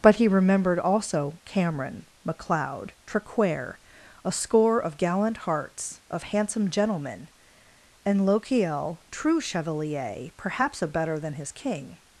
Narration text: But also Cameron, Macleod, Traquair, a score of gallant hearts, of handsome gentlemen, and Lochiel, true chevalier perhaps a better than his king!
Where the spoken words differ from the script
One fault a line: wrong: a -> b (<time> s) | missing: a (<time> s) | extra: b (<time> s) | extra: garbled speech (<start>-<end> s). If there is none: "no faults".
extra: he remembered (0.1 s)